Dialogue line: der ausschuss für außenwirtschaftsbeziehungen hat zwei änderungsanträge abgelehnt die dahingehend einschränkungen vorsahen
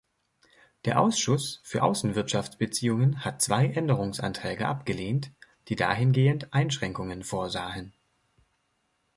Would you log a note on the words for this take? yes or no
no